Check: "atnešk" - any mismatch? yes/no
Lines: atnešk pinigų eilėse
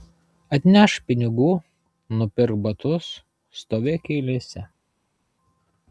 no